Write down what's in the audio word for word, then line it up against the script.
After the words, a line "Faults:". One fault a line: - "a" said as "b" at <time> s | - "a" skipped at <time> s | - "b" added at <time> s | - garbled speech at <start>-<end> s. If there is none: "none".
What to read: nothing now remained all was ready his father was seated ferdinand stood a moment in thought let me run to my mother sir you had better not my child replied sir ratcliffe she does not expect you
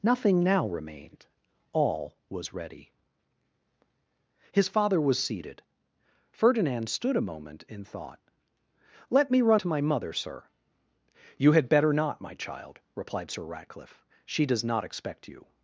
nothing now remained all was ready his father was seated ferdinand stood a moment in thought let me run to my mother sir you had better not my child replied sir ratcliffe she does not expect you
Faults:
none